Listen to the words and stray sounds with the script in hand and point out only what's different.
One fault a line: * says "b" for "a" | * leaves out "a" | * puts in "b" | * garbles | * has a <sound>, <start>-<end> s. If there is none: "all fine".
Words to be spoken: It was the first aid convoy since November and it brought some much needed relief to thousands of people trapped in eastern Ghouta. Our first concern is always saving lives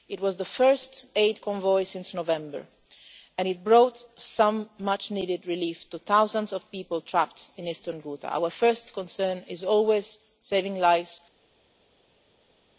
all fine